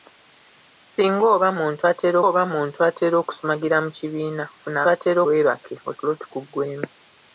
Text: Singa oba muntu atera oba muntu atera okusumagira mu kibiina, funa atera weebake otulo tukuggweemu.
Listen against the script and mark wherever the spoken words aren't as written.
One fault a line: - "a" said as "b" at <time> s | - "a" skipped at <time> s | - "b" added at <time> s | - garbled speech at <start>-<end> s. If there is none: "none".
none